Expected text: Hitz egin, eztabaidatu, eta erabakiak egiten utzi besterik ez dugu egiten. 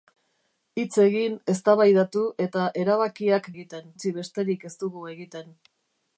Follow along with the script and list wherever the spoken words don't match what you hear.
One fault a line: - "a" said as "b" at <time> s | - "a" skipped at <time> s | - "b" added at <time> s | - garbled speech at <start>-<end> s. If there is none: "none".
none